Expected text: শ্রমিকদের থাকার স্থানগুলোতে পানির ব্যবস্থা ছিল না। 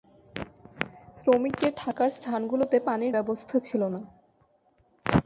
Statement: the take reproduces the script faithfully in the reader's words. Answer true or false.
true